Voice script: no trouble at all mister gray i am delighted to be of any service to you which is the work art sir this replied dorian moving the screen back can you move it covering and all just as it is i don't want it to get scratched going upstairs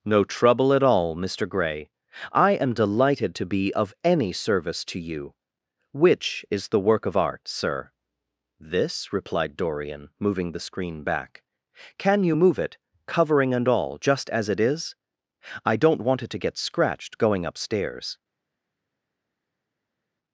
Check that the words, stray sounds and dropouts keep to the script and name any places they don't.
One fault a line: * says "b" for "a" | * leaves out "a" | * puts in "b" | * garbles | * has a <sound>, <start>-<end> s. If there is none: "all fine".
* puts in "of"